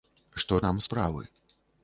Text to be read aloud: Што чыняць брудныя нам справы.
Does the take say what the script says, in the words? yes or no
no